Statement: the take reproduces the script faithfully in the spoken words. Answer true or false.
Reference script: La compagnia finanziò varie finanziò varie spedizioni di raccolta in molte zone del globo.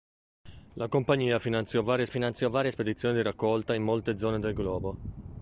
true